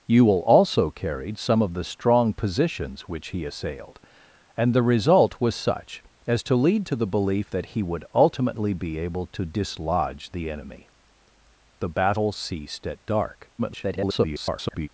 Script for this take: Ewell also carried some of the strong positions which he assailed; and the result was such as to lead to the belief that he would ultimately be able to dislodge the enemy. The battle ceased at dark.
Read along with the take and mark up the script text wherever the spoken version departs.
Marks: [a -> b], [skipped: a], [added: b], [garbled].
Ewell also carried some of the strong positions which he assailed; and the result was such as to lead to the belief that he would ultimately be able to dislodge the enemy. The battle ceased at dark. [garbled]